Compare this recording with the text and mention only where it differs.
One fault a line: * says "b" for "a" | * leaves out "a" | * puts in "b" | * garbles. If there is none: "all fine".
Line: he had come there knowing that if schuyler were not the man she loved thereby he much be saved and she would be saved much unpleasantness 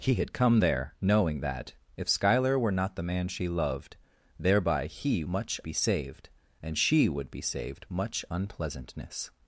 all fine